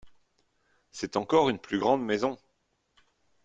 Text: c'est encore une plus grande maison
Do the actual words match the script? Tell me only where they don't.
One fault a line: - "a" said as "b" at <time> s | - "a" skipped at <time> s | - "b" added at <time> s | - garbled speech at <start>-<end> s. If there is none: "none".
none